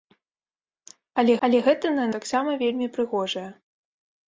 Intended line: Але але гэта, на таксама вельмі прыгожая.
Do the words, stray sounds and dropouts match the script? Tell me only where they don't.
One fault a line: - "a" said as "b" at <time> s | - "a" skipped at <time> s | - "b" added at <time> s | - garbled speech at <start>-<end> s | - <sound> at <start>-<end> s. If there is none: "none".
none